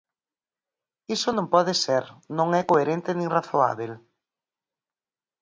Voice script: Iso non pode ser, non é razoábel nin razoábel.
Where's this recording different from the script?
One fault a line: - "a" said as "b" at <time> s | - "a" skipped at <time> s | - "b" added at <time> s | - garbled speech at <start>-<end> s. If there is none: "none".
- "razoábel" said as "coherente" at 2.7 s